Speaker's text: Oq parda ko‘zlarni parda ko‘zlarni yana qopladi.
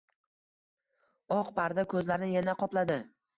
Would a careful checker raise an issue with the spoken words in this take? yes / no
yes